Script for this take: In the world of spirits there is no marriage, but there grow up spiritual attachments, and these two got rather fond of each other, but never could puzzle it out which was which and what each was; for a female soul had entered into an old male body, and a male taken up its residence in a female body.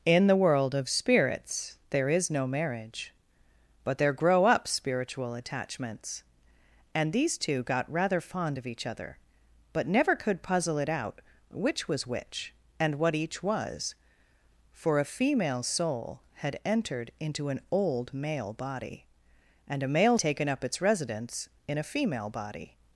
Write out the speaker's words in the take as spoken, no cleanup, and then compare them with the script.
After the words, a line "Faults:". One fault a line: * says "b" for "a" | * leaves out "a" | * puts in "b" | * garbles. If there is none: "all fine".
In the world of spirits there is no marriage, but there grow up spiritual attachments, and these two got rather fond of each other, but never could puzzle it out which was which and what each was; for a female soul had entered into an old male body, and a male taken up its residence in a female body.
Faults:
all fine